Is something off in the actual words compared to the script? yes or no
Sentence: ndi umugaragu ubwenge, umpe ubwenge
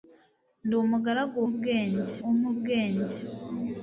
no